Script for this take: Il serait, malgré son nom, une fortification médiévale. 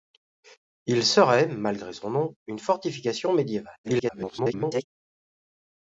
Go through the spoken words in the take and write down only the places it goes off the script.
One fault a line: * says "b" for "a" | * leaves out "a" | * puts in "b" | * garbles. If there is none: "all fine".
* garbles